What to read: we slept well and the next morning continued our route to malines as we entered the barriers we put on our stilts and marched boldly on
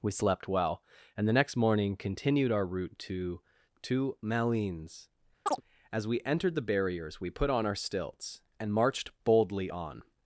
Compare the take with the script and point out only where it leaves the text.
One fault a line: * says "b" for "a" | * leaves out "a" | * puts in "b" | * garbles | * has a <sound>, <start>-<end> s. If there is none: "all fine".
* puts in "to"
* has a chirp, 5.5-5.6 s